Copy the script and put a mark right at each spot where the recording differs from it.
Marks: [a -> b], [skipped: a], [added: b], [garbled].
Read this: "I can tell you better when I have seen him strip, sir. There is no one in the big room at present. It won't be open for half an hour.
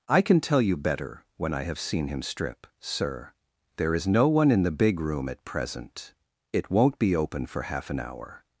"I can tell you better when I have seen him strip, sir. There is no one in the big room at present. It won't be open for half an hour.